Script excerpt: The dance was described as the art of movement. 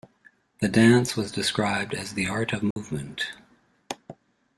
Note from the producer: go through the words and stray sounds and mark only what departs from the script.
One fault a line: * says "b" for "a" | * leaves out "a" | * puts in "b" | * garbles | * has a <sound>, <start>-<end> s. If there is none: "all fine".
* has a dropout, 2.7-2.8 s